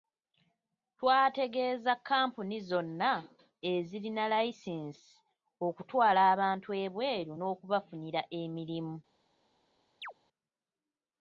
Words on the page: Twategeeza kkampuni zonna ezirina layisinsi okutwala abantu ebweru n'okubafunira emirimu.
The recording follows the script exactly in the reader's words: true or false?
true